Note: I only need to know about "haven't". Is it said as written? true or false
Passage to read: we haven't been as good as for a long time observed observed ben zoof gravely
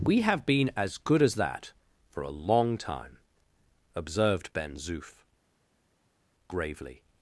false